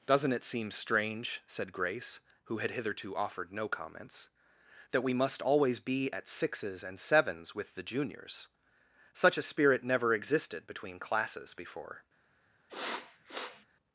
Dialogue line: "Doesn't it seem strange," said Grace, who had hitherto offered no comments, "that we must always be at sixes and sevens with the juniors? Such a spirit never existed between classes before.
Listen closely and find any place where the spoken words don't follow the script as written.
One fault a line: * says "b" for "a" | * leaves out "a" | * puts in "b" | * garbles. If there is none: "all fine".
all fine